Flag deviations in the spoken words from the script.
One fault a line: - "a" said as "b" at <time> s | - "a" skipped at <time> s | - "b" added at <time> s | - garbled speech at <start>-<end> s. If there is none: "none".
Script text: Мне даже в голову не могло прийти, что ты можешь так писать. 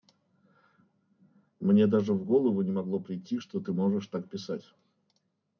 none